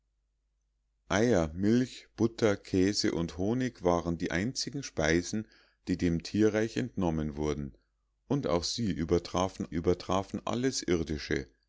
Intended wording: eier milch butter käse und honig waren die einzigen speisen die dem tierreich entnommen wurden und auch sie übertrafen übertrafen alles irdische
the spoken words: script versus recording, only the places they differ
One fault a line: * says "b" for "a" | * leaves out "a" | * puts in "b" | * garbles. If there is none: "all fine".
all fine